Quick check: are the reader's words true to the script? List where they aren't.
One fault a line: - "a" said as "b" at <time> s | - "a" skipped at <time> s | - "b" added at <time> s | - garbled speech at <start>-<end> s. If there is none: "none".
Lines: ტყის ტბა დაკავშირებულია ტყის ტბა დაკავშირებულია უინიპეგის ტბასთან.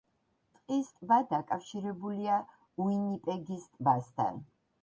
- "ტყის ტბა დაკავშირებულია" skipped at 2.4 s